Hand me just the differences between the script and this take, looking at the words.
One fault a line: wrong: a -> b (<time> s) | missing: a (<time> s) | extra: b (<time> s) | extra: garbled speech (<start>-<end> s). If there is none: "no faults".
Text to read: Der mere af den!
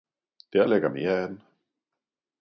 extra: ligger (0.7 s)